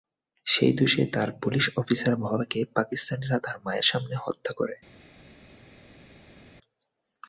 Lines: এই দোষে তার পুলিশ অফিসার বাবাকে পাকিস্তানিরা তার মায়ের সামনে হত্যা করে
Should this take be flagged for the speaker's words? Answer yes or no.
yes